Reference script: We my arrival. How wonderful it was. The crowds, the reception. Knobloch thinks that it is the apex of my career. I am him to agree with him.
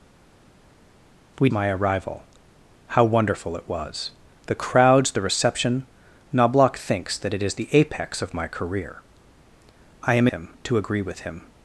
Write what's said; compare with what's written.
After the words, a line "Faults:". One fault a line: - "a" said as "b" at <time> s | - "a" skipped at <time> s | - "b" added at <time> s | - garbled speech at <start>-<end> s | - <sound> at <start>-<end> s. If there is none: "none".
We my arrival. How wonderful it was. The crowds, the reception. Knobloch thinks that it is the apex of my career. I am him to agree with him.
Faults:
none